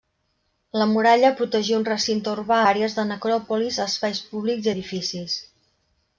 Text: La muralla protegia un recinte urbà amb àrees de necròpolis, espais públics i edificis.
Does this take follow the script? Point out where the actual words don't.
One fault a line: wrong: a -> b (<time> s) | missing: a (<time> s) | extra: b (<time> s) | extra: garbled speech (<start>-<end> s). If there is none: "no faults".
missing: amb (2.6 s)